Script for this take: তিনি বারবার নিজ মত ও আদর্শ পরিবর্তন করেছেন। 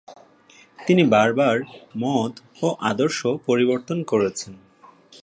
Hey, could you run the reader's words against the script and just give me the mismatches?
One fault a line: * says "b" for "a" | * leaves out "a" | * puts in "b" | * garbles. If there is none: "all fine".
* leaves out "নিজ"